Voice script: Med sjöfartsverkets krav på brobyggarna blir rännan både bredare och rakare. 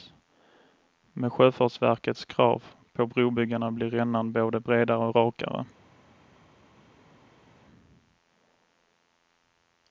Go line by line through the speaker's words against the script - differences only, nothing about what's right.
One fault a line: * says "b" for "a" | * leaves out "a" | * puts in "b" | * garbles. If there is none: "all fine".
all fine